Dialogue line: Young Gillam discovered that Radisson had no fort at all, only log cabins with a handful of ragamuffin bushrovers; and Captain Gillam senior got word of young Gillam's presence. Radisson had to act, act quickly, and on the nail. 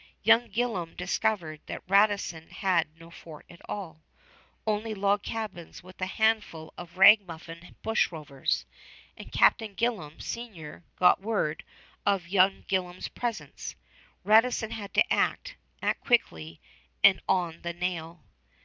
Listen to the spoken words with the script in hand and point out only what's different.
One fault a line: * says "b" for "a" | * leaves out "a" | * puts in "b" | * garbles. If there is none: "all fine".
all fine